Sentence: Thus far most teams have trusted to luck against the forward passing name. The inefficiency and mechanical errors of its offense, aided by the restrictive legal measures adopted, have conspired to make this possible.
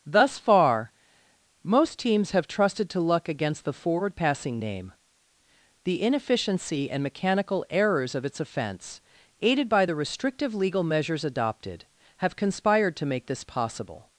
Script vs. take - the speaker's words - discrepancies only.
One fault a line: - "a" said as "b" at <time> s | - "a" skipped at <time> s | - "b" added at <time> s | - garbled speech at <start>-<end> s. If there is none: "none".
none